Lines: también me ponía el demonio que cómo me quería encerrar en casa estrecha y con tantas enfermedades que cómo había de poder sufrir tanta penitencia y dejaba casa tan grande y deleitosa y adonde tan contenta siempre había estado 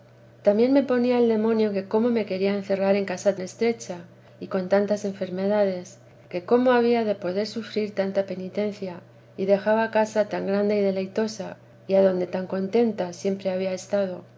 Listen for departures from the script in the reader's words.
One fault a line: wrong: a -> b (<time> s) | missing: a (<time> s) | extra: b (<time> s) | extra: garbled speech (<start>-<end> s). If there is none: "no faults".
no faults